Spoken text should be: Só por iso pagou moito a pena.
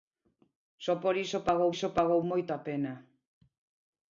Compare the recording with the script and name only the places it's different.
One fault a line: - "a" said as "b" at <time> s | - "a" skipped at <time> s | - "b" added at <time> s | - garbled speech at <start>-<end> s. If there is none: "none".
- "iso pagou" added at 1.7 s